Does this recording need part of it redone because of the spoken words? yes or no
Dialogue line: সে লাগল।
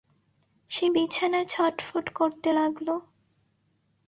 yes